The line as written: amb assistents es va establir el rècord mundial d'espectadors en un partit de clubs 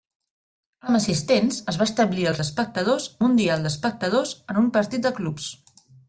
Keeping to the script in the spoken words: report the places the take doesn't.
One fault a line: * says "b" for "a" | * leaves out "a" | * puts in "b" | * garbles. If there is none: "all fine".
* says "d'espectadors" for "rècord"